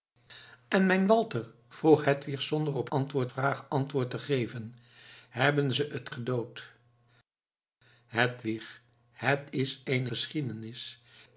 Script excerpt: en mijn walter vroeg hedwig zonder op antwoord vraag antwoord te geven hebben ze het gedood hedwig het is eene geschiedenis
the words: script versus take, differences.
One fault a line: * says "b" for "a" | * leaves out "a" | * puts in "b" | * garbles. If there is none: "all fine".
all fine